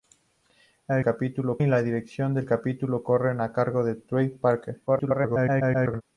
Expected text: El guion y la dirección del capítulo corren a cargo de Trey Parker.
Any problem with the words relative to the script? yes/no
yes